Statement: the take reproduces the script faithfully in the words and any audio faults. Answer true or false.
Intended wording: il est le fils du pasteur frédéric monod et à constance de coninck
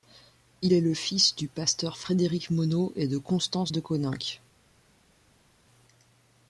false